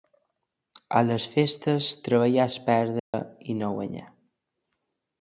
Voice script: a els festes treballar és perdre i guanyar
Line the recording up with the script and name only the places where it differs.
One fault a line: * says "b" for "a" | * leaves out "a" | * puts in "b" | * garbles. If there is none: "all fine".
* says "les" for "els"
* puts in "no"